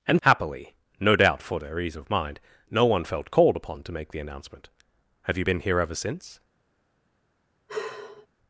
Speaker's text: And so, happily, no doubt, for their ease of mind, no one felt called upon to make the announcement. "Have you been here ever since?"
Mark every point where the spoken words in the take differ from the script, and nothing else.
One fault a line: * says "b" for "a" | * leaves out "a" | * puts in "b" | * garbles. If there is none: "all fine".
* leaves out "so"